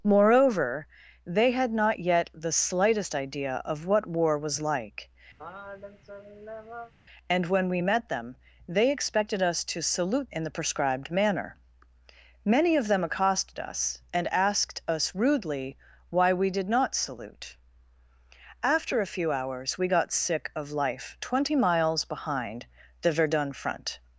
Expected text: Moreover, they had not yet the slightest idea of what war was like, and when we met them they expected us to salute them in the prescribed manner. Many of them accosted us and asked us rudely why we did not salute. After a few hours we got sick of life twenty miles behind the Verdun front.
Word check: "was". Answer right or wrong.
right